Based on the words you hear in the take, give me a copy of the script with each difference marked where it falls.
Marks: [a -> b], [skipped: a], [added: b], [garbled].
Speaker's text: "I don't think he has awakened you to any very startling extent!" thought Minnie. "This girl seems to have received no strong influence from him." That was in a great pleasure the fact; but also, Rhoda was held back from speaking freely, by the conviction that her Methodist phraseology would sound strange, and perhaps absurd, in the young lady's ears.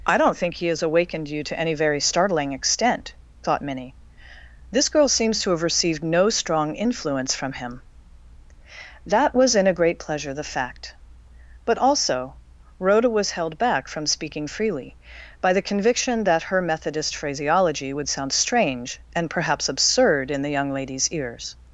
"I don't think he has awakened you to any very startling extent!" thought Minnie. "This girl seems to have received no strong influence from him." That was in a great pleasure the fact; but also, Rhoda was held back from speaking freely, by the conviction that her Methodist phraseology would sound strange, and perhaps absurd, in the young lady's ears.